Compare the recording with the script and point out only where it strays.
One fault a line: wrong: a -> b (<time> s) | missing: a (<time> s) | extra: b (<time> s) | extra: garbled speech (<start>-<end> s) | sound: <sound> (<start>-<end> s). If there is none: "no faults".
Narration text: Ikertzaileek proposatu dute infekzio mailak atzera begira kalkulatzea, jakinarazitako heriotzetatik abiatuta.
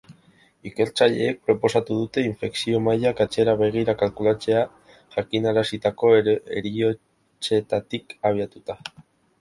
no faults